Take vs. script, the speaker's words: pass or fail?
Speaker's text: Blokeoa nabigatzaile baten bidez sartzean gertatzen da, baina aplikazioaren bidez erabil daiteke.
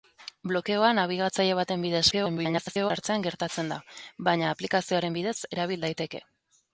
fail